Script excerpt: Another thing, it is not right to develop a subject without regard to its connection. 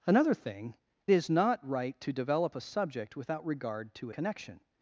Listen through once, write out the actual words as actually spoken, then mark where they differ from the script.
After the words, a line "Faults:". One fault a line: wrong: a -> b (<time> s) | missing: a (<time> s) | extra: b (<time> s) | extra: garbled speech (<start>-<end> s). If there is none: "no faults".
Another thing, is not right to develop a subject without regard to connection.
Faults:
missing: it (0.8 s)
missing: its (4.1 s)